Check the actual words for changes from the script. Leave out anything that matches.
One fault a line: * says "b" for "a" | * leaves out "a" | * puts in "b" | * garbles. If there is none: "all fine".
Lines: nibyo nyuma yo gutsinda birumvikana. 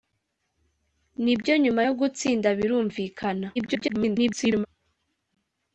* garbles